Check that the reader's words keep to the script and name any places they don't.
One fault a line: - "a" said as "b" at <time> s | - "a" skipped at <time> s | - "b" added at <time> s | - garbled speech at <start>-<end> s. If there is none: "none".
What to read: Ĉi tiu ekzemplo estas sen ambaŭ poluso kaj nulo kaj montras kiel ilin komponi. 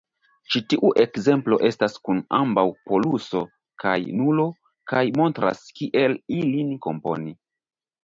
- "sen" said as "kun" at 2.1 s